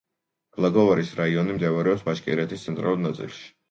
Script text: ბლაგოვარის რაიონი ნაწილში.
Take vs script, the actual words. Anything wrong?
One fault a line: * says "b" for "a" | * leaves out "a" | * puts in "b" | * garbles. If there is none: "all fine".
* puts in "მდებარეობს ბაშკირეთის ცენტრალურ"